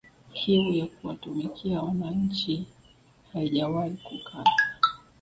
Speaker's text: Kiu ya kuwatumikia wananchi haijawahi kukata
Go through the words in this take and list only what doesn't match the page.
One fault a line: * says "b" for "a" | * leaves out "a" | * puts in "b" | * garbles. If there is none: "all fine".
all fine